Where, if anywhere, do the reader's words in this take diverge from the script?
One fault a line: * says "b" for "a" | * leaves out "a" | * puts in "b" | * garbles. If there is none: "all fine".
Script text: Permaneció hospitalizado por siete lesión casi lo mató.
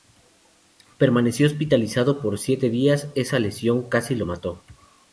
* puts in "días esa"